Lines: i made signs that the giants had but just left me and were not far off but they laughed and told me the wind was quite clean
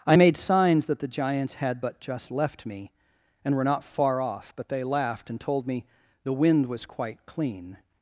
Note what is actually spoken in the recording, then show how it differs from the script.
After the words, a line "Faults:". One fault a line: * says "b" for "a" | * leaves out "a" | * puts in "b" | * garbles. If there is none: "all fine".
i made signs that the giants had but just left me and were not far off but they laughed and told me the wind was quite clean
Faults:
all fine